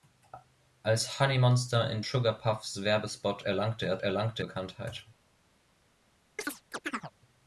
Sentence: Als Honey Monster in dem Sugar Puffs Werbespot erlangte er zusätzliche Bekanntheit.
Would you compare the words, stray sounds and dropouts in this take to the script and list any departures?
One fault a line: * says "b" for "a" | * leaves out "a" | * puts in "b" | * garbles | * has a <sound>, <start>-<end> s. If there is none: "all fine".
* leaves out "dem"
* says "erlangte" for "zusätzliche"
* has a chirp, 6.4-7.1 s